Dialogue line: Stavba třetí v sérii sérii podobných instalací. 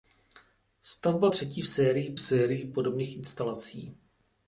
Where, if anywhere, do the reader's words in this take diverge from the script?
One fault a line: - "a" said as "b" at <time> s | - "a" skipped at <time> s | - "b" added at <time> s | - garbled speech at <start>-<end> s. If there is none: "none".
none